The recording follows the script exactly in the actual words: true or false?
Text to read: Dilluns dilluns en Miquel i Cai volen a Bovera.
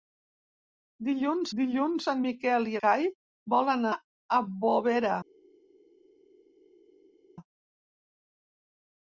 true